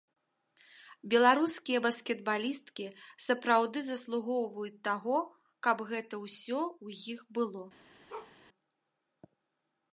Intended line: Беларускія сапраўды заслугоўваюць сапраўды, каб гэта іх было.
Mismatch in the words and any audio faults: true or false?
true